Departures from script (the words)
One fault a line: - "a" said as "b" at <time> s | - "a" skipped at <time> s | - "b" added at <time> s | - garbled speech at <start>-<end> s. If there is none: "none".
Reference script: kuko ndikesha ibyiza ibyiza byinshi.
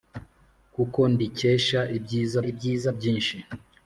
none